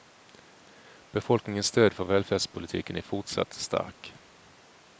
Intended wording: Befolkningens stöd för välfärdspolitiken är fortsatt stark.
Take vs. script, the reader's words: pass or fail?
pass